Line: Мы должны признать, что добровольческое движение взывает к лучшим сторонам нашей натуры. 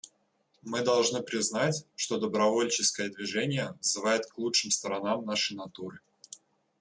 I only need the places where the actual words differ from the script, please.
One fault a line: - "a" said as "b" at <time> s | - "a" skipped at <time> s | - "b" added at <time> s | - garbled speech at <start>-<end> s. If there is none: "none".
none